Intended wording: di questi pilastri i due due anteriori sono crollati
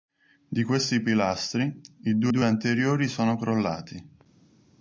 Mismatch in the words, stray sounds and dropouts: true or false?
false